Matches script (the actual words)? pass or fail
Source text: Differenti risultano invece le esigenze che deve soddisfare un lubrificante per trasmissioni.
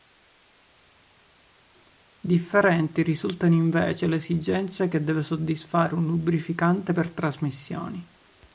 pass